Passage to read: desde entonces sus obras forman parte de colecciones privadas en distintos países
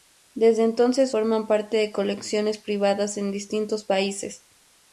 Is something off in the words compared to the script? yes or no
yes